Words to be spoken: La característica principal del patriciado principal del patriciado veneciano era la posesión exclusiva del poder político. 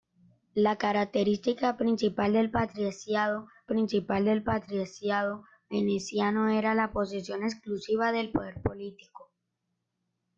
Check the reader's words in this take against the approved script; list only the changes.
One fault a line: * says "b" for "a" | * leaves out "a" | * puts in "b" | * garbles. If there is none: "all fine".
all fine